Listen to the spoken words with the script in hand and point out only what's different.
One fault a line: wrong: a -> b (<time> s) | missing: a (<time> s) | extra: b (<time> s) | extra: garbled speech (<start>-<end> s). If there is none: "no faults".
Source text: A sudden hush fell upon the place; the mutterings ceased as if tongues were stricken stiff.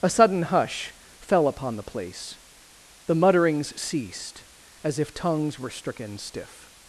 no faults